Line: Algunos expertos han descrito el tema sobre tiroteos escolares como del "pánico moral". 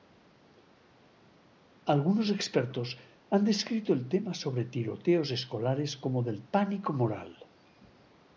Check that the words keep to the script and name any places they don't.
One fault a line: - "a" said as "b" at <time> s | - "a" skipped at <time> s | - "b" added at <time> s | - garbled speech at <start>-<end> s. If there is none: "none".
none